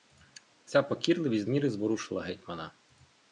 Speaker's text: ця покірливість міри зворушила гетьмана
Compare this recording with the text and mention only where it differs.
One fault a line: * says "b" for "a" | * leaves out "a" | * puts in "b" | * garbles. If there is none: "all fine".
all fine